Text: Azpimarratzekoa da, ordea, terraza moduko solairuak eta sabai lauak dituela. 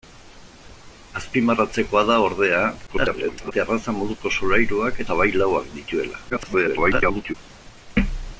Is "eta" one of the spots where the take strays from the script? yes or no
yes